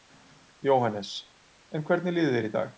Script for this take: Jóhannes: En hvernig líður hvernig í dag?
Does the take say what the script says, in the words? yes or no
no